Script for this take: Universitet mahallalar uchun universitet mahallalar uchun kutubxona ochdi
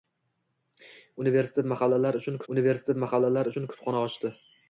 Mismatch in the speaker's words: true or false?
false